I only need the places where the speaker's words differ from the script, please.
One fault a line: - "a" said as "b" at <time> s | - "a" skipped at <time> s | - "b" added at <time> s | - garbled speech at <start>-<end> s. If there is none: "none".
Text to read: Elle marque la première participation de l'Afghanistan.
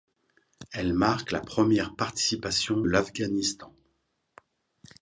- "de" skipped at 2.9 s